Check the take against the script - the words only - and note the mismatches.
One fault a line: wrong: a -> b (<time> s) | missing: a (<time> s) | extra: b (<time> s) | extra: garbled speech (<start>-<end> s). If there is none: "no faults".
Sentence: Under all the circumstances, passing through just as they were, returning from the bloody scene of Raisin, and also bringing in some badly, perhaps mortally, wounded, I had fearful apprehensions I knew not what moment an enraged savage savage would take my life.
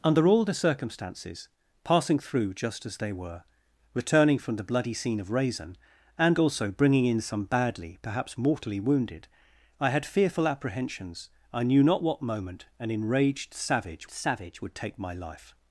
no faults